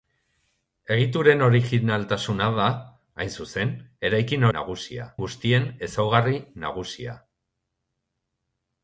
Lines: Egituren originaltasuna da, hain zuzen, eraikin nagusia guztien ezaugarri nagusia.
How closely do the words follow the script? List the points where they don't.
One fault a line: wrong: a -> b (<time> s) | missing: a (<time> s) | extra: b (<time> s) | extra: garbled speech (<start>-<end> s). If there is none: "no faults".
no faults